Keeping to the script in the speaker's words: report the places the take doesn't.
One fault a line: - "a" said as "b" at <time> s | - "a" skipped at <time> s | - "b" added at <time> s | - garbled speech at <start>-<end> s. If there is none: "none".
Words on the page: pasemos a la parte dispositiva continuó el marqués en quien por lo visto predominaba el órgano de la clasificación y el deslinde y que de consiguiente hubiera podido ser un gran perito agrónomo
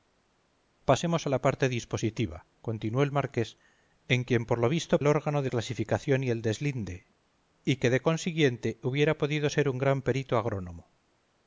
- "predominaba" skipped at 5.0 s
- "la" skipped at 5.5 s